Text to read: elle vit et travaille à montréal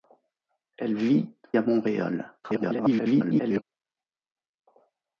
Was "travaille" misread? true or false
true